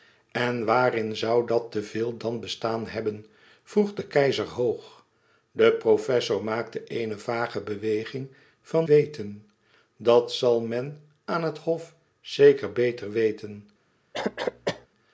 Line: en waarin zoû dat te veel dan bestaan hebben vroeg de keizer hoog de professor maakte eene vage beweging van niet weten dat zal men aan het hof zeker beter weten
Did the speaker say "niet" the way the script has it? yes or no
no